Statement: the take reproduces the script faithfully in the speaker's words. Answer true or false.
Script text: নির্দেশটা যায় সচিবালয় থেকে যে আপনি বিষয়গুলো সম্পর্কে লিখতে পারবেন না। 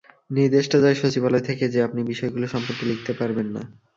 true